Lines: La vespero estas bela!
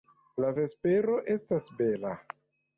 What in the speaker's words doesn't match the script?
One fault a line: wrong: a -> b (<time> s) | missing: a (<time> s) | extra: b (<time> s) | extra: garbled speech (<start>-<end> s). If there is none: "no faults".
no faults